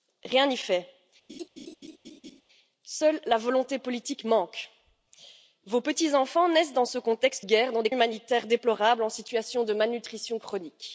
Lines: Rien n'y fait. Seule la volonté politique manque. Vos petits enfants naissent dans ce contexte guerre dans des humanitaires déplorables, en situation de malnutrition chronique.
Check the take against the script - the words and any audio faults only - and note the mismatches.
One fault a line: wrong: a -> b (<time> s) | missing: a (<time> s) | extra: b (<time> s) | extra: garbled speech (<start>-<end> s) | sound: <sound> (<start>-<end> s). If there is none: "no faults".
sound: laugh (1.3-2.4 s)